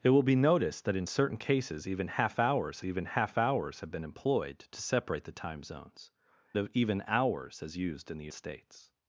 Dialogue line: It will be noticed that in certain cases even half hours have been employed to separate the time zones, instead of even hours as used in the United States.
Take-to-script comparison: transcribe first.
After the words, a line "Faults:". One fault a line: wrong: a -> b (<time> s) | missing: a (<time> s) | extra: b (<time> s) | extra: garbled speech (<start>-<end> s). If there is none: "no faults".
It will be noticed that in certain cases even half hours even half hours have been employed to separate the time zones, of even hours as used in the States.
Faults:
extra: even half hours (2.8 s)
missing: instead (6.1 s)
missing: United (8.3 s)